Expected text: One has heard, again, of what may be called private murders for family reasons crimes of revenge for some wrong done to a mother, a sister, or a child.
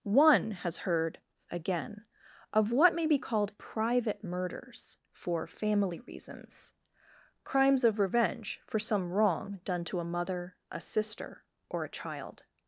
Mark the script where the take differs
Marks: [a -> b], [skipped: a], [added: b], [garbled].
One has heard, again, of what may be called private murders for family reasons crimes of revenge for some wrong done to a mother, a sister, or a child.